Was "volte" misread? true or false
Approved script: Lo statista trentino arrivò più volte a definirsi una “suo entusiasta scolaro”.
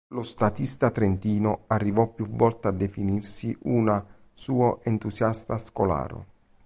false